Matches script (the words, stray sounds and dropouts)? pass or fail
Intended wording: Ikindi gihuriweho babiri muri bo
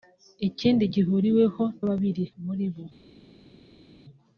pass